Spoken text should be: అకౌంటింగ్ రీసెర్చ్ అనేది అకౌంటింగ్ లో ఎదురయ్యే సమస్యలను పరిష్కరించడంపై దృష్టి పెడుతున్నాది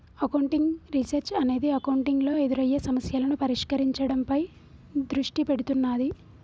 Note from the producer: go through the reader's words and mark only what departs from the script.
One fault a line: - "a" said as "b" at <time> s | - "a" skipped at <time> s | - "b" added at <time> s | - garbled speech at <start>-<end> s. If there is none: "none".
none